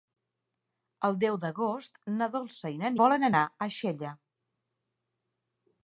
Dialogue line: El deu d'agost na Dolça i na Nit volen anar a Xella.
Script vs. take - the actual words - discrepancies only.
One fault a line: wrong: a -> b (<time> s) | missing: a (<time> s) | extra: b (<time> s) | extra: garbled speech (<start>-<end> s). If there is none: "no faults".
missing: Nit (2.9 s)